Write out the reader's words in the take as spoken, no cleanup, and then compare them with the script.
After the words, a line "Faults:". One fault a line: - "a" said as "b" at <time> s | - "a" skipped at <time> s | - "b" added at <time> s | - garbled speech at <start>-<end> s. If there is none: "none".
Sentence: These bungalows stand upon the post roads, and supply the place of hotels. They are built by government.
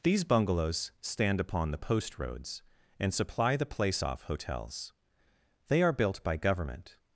These bungalows stand upon the post roads, and supply the place off hotels. They are built by government.
Faults:
- "of" said as "off" at 4.0 s